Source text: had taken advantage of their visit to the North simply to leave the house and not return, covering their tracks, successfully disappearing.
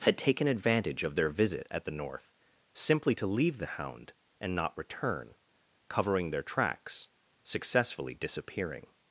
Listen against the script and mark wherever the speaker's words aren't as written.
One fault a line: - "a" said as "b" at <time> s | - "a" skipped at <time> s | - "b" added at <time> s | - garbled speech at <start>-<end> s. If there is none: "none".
- "to" said as "at" at 1.7 s
- "house" said as "hound" at 3.6 s